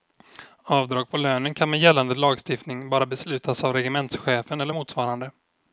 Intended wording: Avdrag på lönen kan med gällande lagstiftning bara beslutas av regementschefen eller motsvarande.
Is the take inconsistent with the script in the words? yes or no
no